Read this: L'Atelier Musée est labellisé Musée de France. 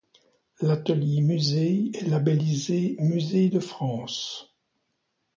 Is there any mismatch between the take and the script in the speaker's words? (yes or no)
no